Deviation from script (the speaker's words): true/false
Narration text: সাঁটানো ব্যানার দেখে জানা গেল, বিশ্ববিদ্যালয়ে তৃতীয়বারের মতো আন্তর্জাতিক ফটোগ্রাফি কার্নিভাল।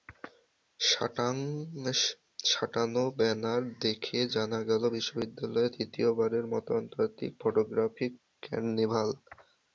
false